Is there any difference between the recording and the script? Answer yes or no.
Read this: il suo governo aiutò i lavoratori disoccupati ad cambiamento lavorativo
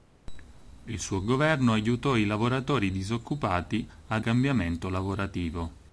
no